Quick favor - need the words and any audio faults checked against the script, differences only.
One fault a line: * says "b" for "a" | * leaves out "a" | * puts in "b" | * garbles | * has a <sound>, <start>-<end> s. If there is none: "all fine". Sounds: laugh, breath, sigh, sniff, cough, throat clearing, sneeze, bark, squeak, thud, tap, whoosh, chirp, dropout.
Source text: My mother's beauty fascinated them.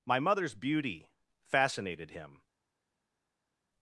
* says "him" for "them"